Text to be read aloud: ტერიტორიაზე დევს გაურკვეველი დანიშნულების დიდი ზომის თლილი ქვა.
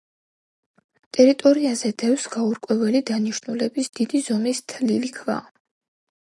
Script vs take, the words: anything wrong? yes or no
no